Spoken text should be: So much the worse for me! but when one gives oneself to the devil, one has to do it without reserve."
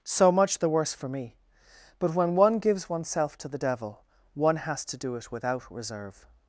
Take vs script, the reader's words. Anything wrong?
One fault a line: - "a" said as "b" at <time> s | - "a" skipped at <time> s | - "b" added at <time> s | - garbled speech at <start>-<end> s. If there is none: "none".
none